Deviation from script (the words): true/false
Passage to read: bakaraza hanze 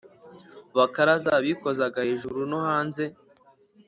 true